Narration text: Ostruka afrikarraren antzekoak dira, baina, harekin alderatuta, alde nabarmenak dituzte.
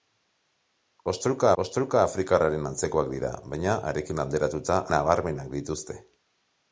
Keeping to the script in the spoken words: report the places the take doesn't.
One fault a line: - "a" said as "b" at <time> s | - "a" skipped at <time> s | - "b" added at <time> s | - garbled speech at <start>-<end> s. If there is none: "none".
- "ostruka" added at 1.6 s
- "alde" skipped at 4.8 s